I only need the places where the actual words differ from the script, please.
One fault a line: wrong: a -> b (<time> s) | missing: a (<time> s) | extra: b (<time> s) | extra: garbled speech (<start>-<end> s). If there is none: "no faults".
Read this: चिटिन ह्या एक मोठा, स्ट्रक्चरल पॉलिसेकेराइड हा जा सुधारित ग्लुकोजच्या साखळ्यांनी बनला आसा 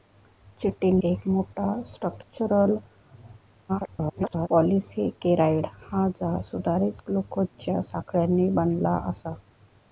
missing: ह्या (1.0 s)
extra: garbled speech (3.7-4.5 s)